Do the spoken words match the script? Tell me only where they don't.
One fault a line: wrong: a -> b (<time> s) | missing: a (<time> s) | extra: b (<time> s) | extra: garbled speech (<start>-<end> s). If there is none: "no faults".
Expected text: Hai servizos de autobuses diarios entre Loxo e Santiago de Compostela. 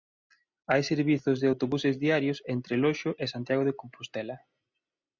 no faults